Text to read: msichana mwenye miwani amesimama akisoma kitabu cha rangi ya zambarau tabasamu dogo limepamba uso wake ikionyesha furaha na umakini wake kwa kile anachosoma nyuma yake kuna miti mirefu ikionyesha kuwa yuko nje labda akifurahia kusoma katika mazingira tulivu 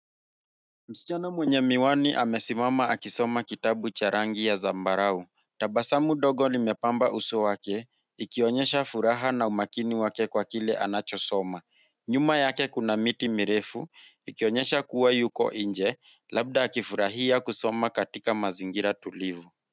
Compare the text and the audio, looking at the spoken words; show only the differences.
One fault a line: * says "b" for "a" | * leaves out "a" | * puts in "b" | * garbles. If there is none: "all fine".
all fine